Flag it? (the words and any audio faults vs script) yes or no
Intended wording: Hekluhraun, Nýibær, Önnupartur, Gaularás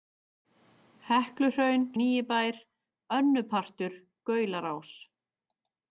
no